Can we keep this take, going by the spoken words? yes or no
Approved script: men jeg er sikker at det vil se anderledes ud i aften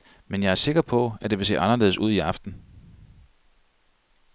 no